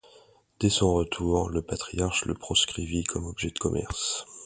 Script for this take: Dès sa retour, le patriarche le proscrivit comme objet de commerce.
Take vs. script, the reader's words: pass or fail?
fail